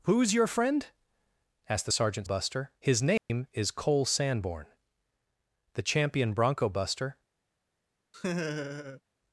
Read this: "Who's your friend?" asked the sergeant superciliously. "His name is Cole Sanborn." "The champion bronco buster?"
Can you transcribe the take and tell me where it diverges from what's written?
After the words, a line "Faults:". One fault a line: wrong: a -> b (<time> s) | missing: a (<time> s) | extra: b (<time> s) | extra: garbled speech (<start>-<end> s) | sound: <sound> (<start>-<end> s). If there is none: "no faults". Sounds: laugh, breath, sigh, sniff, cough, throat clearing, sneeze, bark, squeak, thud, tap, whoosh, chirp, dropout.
"Who's your friend?" asked the sergeant buster. "His name is Cole Sanborn." "The champion bronco buster?"
Faults:
wrong: superciliously -> buster (2.2 s)
sound: dropout (3.2-3.3 s)
sound: laugh (8.1-9.0 s)